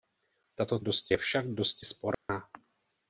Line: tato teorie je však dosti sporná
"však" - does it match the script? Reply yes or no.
yes